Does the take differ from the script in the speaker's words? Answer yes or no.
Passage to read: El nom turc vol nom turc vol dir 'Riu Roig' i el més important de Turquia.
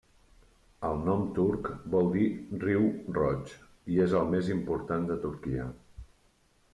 yes